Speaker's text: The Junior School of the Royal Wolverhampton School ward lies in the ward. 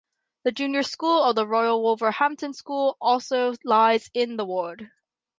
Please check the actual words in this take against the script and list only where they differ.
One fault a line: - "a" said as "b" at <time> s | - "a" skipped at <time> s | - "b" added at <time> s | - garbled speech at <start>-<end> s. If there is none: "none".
- "ward" said as "also" at 3.0 s